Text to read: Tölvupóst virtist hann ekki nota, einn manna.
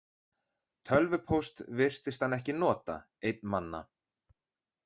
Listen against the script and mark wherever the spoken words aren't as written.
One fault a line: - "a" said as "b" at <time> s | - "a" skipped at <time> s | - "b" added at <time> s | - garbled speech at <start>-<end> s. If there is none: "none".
none